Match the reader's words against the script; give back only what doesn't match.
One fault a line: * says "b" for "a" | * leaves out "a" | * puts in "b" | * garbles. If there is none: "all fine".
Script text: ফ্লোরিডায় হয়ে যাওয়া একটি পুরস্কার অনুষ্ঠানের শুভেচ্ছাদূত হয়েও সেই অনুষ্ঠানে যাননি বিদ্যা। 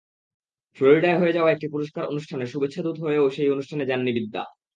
all fine